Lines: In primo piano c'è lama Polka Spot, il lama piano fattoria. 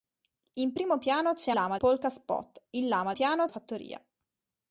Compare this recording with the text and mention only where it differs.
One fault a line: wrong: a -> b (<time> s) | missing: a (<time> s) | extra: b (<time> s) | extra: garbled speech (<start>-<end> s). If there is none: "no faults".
no faults